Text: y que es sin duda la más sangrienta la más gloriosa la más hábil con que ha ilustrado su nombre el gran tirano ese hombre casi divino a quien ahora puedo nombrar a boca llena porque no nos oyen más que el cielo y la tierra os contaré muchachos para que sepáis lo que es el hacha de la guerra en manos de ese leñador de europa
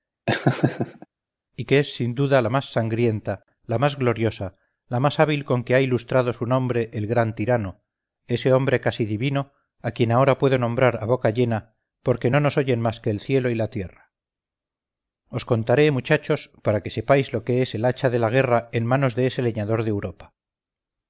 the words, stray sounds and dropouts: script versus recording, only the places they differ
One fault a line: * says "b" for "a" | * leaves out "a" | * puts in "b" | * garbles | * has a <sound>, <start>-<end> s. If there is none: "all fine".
* has a laugh, 0.3-1.1 s